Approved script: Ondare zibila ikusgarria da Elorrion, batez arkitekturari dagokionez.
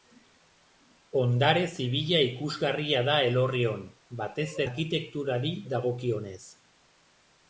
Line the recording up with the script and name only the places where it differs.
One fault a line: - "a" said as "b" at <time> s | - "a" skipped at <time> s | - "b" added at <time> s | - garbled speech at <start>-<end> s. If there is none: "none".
none